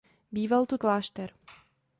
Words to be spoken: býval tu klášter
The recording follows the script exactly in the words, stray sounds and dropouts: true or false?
true